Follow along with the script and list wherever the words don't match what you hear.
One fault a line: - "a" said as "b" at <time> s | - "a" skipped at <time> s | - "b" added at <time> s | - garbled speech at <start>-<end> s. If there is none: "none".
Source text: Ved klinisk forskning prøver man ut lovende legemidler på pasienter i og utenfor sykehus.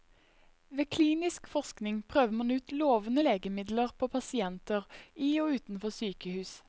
none